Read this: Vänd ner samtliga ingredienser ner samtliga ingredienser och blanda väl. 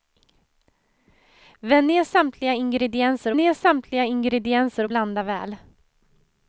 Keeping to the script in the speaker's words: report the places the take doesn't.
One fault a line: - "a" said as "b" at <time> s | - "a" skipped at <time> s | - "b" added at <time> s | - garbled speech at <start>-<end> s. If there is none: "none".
none